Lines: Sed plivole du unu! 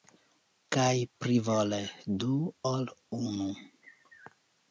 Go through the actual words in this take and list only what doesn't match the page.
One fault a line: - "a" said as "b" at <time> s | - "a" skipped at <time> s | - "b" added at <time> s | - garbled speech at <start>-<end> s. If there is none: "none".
- "Sed" said as "Kaj" at 0.8 s
- "ol" added at 2.7 s